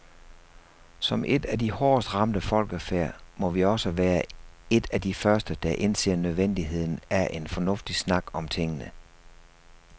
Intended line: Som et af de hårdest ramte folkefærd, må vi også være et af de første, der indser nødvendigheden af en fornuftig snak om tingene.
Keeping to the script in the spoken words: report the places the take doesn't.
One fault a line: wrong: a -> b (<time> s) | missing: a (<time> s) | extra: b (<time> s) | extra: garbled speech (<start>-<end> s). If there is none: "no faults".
no faults